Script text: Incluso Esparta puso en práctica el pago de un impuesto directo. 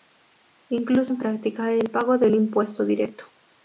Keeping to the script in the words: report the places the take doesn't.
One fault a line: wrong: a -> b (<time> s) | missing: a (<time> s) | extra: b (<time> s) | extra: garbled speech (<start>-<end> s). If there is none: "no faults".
missing: Esparta puso (1.1 s)